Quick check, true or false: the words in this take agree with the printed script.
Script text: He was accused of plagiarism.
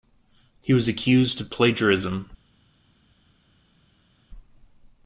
true